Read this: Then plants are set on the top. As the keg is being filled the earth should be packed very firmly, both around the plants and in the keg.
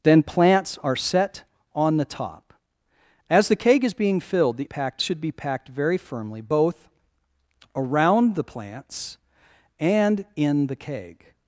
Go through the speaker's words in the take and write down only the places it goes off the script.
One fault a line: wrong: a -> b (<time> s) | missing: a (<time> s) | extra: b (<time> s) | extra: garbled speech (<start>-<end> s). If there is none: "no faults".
wrong: earth -> packed (4.6 s)